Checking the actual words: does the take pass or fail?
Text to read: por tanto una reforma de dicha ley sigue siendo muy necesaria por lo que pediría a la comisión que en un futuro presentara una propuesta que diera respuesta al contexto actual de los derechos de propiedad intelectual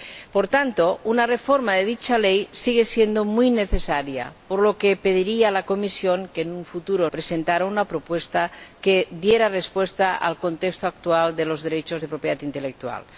pass